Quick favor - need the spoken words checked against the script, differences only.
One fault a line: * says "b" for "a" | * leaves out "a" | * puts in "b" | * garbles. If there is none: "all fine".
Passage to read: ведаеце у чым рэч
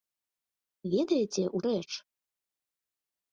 * leaves out "чым"